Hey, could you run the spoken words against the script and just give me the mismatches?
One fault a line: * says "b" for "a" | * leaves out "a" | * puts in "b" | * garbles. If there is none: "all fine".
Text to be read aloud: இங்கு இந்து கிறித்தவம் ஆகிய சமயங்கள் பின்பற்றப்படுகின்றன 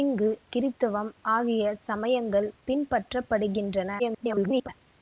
* leaves out "இந்து"
* garbles